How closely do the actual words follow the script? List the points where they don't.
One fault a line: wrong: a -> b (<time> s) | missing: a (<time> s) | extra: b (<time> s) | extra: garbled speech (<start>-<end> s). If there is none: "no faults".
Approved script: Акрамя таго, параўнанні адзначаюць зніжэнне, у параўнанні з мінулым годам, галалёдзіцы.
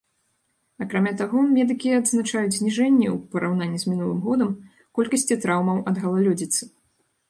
wrong: параўнанні -> медыкі (1.6 s)
extra: колькасці траўмаў ад (5.0 s)